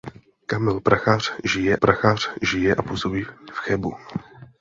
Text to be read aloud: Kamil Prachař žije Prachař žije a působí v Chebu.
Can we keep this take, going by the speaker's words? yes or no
yes